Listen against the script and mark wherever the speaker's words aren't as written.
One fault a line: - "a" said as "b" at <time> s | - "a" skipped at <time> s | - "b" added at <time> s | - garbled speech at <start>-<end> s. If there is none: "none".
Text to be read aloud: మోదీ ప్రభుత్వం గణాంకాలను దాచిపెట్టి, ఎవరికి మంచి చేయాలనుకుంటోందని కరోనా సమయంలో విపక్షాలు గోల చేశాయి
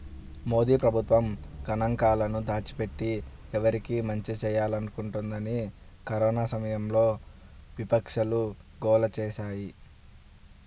none